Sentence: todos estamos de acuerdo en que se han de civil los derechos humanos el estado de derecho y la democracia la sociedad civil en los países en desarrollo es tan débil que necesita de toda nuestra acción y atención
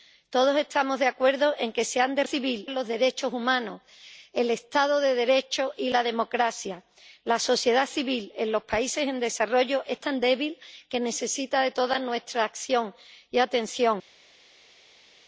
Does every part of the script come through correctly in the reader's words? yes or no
yes